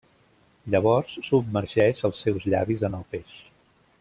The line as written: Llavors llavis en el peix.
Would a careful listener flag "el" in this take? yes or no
no